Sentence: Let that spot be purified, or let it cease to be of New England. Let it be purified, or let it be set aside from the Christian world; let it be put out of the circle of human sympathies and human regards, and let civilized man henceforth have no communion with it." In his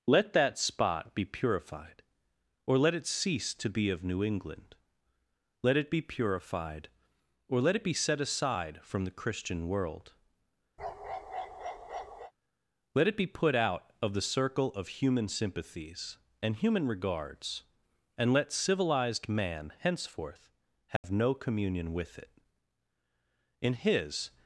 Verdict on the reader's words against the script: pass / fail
pass